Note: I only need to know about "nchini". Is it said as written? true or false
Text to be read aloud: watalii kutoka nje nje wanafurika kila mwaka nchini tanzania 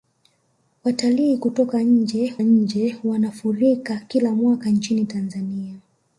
true